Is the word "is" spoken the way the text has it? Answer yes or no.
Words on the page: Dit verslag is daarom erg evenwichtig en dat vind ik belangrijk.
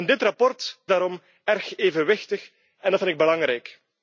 no